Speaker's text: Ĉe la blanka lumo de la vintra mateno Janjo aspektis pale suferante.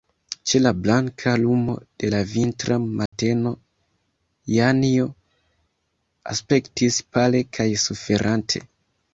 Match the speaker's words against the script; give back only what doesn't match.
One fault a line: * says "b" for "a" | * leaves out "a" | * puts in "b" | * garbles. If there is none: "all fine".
* puts in "kaj"